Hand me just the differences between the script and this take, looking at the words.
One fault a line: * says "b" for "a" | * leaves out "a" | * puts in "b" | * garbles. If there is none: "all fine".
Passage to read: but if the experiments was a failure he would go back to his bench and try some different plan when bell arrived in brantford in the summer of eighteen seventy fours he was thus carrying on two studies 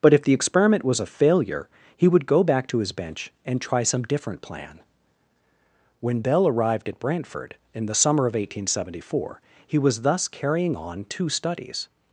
* says "experiment" for "experiments"
* says "at" for "in"
* says "four" for "fours"